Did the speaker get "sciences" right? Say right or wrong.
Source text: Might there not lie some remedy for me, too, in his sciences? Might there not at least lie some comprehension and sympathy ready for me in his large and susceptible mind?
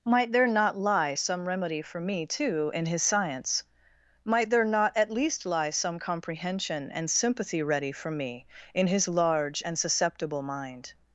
wrong